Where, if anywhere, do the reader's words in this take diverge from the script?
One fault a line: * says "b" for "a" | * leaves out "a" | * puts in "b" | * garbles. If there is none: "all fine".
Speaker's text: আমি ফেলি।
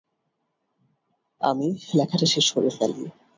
* puts in "লেখাটা শেষ করে"